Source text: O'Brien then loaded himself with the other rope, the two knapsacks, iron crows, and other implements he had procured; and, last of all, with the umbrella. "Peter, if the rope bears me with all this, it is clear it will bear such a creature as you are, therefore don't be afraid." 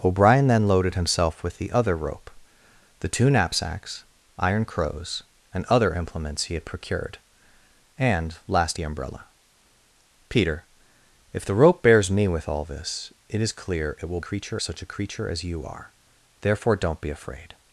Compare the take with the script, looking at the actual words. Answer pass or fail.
fail